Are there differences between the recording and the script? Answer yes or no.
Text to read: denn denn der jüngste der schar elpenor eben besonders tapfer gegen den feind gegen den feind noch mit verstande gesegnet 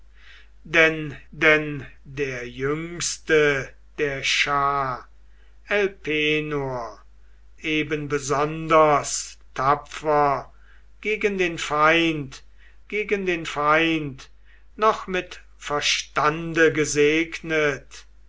no